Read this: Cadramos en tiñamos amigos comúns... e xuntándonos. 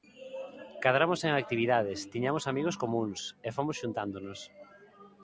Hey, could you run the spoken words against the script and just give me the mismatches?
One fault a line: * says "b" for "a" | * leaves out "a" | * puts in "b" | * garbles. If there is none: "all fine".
* puts in "actividades"
* puts in "fomos"